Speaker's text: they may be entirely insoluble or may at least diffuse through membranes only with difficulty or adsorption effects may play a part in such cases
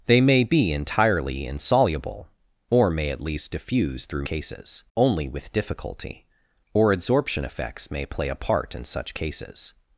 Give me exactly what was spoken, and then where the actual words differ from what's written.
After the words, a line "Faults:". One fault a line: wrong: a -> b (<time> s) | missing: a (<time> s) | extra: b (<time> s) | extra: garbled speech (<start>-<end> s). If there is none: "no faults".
they may be entirely insoluble or may at least diffuse through cases only with difficulty or adsorption effects may play a part in such cases
Faults:
wrong: membranes -> cases (4.2 s)